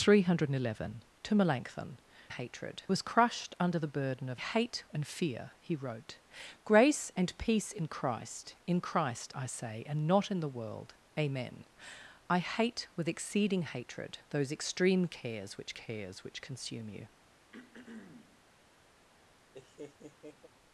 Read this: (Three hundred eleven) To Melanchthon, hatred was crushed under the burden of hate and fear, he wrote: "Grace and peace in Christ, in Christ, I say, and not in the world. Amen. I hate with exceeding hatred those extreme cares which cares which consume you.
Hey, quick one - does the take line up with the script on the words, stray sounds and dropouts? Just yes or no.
no